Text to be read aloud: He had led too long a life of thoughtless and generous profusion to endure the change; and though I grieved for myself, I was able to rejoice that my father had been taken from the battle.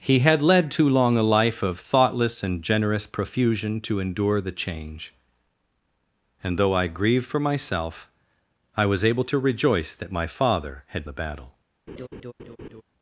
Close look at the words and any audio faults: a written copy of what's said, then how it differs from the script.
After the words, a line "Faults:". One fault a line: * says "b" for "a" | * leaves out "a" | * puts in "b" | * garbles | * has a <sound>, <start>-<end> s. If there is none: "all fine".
He had led too long a life of thoughtless and generous profusion to endure the change; and though I grieved for myself, I was able to rejoice that my father had the battle.
Faults:
* leaves out "been taken from"
* has a laugh, 11.9-12.8 s